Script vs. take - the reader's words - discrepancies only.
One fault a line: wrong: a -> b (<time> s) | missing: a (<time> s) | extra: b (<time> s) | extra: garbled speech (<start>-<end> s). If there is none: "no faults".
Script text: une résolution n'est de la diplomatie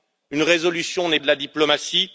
no faults